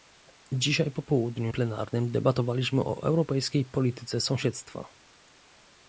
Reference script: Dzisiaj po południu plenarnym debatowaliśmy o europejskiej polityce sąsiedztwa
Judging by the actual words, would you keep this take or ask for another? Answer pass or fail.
pass